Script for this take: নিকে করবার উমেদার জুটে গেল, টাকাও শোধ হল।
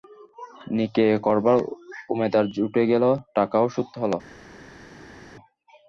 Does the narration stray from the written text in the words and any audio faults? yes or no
no